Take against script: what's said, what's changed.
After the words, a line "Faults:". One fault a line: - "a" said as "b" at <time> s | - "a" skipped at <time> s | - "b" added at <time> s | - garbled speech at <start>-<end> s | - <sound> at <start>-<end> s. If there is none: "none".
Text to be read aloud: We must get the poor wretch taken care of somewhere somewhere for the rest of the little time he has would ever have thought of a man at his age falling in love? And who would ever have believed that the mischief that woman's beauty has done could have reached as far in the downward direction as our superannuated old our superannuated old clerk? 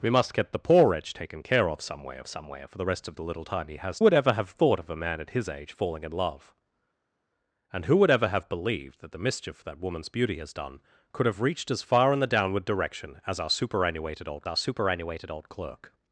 We must get the poor wretch taken care of somewhere somewhere for the rest of the little time he has would ever have thought of a man at his age falling in love? And who would ever have believed that the mischief that woman's beauty has done could have reached as far in the downward direction as our superannuated old our superannuated old clerk?
Faults:
none